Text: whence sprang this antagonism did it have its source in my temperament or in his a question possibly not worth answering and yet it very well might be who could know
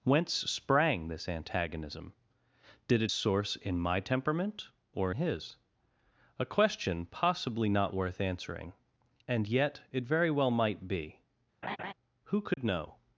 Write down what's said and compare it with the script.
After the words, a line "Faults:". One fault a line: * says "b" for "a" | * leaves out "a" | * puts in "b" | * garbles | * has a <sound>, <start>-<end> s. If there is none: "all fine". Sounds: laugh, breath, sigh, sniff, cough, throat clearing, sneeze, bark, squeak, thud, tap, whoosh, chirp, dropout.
whence sprang this antagonism did it source in my temperament or his a question possibly not worth answering and yet it very well might be who could know
Faults:
* leaves out "have its"
* leaves out "in"
* has a laugh, 11.6-11.9 s
* has a dropout, 12.5-12.6 s